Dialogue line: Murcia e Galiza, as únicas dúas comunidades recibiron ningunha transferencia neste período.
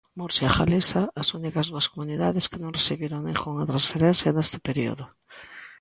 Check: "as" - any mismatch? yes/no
no